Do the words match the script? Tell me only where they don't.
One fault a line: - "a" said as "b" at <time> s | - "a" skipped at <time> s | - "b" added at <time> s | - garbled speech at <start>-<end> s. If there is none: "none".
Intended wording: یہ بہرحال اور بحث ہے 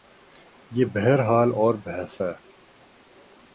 none